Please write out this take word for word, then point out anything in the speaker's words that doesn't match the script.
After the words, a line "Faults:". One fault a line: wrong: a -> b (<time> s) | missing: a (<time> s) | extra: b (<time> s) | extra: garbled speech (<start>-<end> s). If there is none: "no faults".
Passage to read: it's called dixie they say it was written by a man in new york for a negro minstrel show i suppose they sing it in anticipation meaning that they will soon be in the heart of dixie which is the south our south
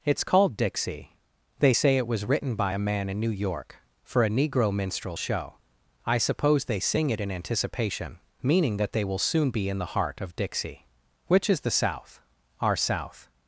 it's called dixie they say it was written by a man in new york for a negro minstrel show i suppose they sing it in anticipation meaning that they will soon be in the heart of dixie which is the south our south
Faults:
no faults